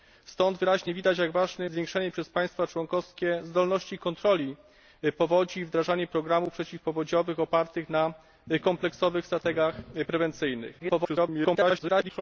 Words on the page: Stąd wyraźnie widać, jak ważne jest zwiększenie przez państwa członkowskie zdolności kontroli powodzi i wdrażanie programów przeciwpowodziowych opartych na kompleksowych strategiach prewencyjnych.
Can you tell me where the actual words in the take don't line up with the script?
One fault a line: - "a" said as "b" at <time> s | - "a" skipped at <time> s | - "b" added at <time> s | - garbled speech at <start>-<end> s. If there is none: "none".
- "jest" skipped at 1.6 s
- garbled speech at 10.8-12.2 s